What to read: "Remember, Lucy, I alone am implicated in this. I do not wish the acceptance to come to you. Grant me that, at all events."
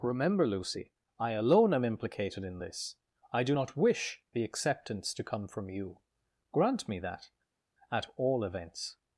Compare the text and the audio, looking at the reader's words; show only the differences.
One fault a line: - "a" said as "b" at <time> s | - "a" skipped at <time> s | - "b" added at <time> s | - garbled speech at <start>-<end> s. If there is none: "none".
- "to" said as "from" at 5.5 s